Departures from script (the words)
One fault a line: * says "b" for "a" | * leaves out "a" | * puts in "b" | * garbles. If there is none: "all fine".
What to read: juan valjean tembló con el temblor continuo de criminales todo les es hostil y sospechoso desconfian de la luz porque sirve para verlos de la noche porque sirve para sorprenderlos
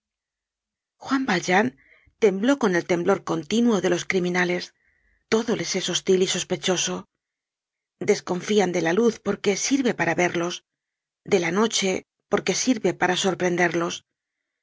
* puts in "los"